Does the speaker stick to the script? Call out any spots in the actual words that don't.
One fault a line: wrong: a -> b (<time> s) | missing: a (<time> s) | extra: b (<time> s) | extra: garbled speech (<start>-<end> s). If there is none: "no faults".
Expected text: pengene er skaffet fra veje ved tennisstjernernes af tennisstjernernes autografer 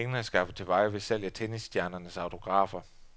wrong: fra -> til (0.6 s)
wrong: tennisstjernernes -> salg (1.0 s)